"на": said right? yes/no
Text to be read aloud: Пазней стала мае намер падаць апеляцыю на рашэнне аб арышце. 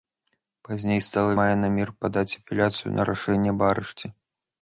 yes